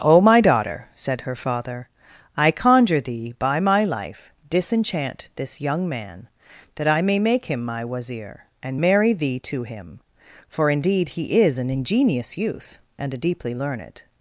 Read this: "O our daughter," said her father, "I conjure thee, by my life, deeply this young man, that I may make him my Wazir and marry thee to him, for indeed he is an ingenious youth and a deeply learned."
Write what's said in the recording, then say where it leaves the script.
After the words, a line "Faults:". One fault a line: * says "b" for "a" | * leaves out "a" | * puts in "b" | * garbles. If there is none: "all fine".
"O my daughter," said her father, "I conjure thee, by my life, disenchant this young man, that I may make him my Wazir and marry thee to him, for indeed he is an ingenious youth and a deeply learned."
Faults:
* says "my" for "our"
* says "disenchant" for "deeply"